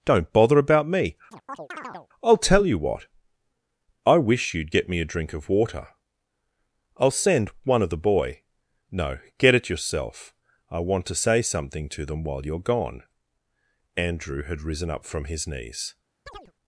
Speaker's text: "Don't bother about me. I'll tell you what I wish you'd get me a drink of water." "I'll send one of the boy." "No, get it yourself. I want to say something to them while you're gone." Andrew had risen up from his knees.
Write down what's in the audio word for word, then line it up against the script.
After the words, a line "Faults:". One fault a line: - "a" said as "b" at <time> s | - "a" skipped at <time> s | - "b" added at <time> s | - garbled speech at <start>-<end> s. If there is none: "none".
"Don't bother about me. I'll tell you what I wish you'd get me a drink of water." "I'll send one of the boy." "No, get it yourself. I want to say something to them while you're gone." Andrew had risen up from his knees.
Faults:
none